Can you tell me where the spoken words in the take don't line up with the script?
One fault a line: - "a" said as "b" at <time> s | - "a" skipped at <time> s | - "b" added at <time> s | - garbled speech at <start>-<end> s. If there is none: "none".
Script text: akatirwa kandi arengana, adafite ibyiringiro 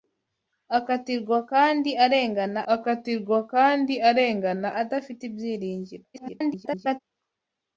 - "akatirwa kandi arengana" added at 2.7 s
- garbled speech at 6.1-7.0 s